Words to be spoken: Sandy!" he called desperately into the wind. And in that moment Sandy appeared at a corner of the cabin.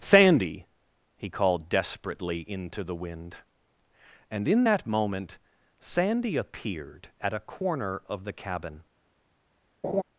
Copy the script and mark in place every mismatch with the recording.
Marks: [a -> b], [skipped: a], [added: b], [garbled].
Sandy!" he called desperately into the wind. And in that moment Sandy appeared at a corner of the cabin.